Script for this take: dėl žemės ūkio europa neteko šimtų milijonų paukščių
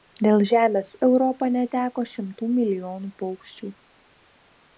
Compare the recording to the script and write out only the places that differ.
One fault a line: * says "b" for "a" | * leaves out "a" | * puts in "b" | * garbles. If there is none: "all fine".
* leaves out "ūkio"